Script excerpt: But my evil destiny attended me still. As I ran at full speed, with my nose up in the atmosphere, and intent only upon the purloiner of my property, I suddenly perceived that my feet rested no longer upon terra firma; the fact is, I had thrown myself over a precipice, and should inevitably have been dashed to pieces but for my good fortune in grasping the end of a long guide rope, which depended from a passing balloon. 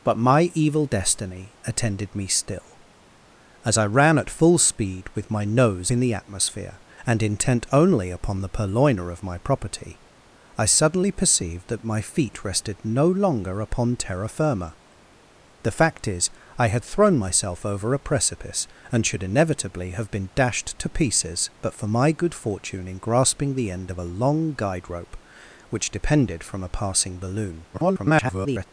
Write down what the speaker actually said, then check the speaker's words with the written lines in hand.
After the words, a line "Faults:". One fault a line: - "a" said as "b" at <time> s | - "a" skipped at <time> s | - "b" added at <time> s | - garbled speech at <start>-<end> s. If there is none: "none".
But my evil destiny attended me still. As I ran at full speed, with my nose in the atmosphere, and intent only upon the purloiner of my property, I suddenly perceived that my feet rested no longer upon terra firma; the fact is, I had thrown myself over a precipice, and should inevitably have been dashed to pieces but for my good fortune in grasping the end of a long guide rope, which depended from a passing balloon. [garbled]
Faults:
- "up" skipped at 5.9 s
- garbled speech at 27.7-28.6 s